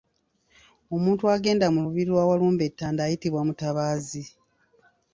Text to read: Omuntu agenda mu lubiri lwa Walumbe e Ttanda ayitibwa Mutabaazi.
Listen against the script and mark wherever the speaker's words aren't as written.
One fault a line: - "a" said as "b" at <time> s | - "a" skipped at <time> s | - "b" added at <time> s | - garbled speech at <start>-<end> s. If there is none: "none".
none